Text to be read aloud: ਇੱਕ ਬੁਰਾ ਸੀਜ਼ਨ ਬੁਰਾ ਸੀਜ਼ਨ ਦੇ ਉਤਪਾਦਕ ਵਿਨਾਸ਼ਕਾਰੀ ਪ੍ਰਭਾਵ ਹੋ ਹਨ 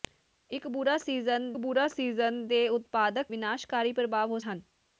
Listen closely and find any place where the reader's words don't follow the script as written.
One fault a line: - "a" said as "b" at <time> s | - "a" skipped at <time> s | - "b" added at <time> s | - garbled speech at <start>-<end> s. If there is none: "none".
none